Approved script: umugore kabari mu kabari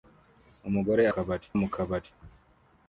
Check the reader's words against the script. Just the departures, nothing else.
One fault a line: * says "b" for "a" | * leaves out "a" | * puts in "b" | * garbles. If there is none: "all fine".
all fine